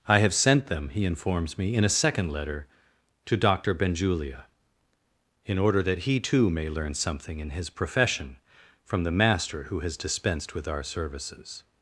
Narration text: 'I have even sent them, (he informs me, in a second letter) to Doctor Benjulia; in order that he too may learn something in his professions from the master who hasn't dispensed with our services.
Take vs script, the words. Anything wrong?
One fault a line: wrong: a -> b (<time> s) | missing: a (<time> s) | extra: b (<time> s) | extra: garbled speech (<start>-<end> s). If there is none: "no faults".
missing: even (0.3 s)
wrong: professions -> profession (7.7 s)
wrong: hasn't -> has (9.8 s)